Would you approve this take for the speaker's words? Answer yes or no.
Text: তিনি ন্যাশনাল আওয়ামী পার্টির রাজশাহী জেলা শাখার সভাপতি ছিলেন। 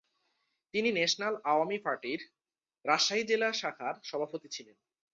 yes